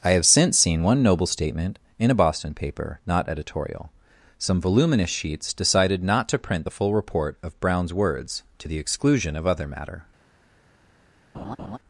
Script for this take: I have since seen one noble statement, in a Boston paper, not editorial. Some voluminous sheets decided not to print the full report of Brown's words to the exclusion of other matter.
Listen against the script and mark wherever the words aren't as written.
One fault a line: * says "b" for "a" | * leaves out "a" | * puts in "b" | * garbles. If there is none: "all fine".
all fine